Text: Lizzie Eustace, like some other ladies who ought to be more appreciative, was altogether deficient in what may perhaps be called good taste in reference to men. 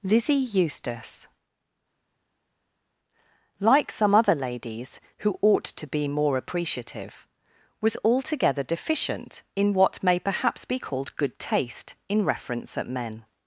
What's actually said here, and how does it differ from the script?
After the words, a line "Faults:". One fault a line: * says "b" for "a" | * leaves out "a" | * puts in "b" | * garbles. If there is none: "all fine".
Lizzie Eustace, like some other ladies who ought to be more appreciative, was altogether deficient in what may perhaps be called good taste in reference at men.
Faults:
* says "at" for "to"